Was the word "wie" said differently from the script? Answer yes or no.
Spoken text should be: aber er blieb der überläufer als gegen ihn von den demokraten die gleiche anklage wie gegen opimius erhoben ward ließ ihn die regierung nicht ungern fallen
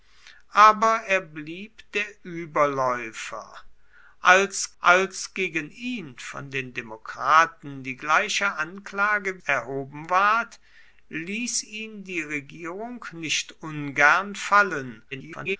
yes